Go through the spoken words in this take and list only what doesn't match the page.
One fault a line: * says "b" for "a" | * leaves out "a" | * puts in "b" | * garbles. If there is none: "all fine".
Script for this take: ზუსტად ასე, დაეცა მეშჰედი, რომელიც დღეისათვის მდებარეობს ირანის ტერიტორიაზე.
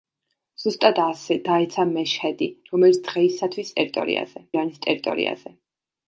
* says "ტერიტორიაზე" for "მდებარეობს"